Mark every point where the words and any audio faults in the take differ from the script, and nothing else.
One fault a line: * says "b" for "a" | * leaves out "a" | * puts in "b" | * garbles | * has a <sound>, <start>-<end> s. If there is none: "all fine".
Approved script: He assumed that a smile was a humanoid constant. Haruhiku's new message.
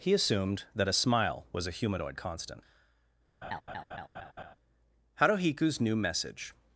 * has a laugh, 3.4-4.6 s